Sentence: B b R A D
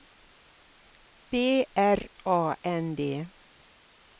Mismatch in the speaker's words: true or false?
true